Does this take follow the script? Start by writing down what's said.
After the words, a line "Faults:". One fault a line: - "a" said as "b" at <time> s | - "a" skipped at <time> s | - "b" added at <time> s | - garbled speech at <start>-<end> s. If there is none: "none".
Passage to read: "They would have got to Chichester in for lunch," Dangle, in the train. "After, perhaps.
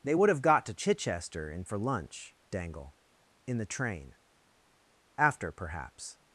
"They would have got to Chichester in for lunch," Dangle, in the train. "After, perhaps.
Faults:
none